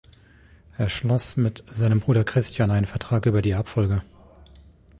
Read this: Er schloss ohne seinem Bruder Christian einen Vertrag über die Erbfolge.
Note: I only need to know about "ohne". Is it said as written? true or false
false